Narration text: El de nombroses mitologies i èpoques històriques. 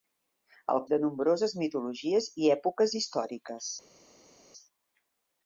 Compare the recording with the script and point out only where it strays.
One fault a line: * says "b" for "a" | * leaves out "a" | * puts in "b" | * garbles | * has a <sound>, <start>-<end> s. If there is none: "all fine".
all fine